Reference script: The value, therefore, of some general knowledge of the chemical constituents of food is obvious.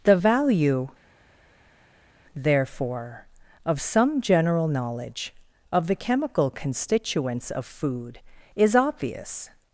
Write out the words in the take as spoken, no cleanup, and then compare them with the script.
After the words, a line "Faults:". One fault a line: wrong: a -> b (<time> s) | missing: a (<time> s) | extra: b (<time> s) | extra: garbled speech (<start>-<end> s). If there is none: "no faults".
The value, therefore, of some general knowledge of the chemical constituents of food is obvious.
Faults:
no faults